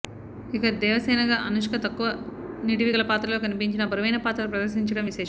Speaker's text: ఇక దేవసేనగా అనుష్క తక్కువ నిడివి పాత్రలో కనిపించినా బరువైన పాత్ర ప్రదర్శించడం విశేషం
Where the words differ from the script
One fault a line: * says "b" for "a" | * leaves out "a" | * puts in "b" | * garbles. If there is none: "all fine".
* puts in "గల"